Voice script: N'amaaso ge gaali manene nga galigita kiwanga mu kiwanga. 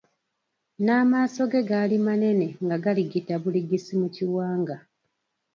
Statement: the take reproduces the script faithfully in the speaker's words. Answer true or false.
false